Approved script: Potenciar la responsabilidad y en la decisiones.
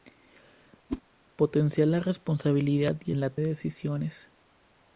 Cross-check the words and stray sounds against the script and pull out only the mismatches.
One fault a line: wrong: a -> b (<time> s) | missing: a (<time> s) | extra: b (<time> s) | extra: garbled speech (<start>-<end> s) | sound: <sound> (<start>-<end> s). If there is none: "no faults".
sound: whoosh (0.9-1.0 s)